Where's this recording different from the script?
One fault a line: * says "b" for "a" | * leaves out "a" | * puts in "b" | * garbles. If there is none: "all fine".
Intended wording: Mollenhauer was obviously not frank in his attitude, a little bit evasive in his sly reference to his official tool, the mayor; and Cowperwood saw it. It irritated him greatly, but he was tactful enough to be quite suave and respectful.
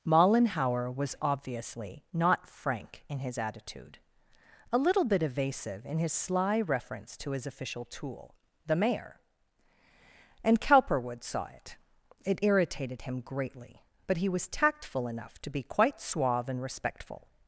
all fine